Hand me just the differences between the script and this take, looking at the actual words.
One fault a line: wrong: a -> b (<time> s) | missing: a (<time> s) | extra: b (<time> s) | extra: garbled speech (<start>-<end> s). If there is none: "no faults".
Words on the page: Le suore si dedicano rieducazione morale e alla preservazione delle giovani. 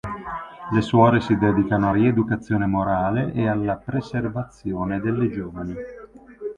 no faults